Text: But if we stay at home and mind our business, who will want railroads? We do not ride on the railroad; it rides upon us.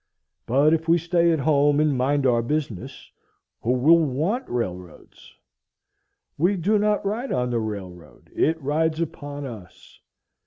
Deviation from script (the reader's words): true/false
false